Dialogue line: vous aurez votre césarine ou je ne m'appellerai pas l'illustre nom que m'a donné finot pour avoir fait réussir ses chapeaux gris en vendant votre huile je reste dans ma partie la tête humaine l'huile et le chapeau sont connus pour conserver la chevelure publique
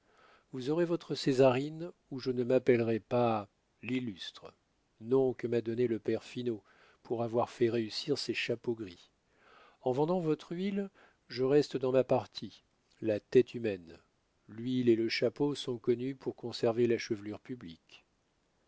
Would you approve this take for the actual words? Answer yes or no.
no